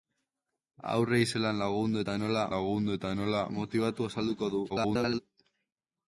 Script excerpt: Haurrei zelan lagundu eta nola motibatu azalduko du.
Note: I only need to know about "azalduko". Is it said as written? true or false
true